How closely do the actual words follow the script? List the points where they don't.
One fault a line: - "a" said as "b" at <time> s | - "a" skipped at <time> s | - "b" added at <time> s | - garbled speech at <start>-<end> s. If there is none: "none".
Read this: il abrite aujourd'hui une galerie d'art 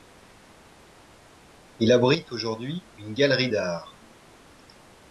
none